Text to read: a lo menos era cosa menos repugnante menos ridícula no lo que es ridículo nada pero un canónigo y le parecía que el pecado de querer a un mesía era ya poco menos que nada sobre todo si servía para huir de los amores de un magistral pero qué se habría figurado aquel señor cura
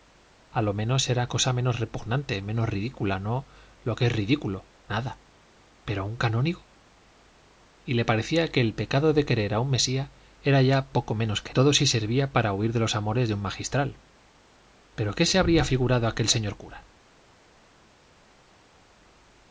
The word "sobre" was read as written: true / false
false